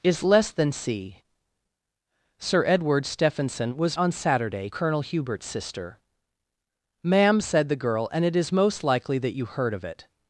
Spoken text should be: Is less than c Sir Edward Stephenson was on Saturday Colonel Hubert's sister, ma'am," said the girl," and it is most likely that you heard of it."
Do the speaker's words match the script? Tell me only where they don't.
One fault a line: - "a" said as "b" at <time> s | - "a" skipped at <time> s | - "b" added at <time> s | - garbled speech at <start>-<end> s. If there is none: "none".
none